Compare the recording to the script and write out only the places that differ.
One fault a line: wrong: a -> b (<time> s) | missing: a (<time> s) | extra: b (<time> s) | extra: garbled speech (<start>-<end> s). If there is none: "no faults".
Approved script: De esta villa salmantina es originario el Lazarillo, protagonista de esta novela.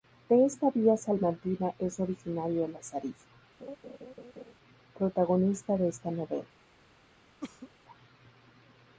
no faults